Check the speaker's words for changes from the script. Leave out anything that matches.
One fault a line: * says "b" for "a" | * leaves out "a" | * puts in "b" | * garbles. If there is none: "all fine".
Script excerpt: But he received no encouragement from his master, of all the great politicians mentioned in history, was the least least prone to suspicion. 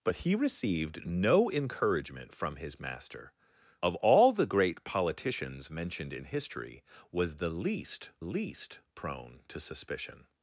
all fine